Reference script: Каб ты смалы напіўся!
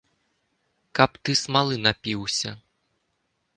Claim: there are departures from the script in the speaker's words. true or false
false